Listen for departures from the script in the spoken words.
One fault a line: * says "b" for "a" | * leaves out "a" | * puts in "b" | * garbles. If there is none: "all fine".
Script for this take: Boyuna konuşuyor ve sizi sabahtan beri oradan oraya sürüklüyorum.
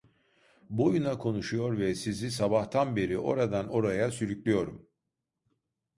all fine